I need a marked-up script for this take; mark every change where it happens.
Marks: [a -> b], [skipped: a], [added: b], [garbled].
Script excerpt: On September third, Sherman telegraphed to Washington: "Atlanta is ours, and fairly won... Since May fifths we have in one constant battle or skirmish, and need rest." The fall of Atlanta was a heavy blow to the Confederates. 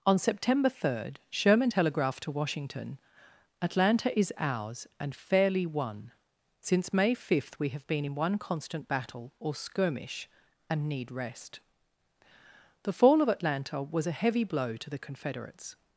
On September third, Sherman telegraphed to Washington: "Atlanta is ours, and fairly won... Since May [fifths -> fifth] we have [added: been] in one constant battle or skirmish, and need rest." The fall of Atlanta was a heavy blow to the Confederates.